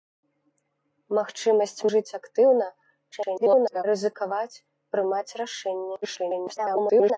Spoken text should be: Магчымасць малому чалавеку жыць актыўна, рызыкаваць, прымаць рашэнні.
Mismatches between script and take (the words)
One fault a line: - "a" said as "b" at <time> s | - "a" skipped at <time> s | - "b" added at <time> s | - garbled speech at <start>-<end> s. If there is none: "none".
- "малому чалавеку" skipped at 1.9 s
- garbled speech at 3.1-3.8 s
- garbled speech at 6.0-7.2 s